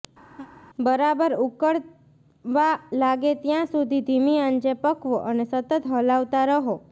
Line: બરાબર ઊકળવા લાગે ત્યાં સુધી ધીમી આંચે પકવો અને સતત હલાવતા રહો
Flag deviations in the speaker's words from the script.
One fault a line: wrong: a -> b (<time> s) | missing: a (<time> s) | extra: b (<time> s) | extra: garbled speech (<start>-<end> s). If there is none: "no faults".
no faults